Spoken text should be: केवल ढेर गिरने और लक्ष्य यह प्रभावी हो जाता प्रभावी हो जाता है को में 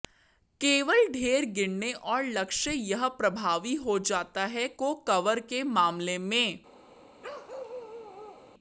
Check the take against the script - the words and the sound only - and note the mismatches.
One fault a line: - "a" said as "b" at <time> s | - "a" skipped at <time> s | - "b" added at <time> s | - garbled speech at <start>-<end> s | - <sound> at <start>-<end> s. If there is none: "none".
- "प्रभावी हो जाता है को" said as "है को कवर के मामले" at 4.5 s
- bark at 7.2-8.5 s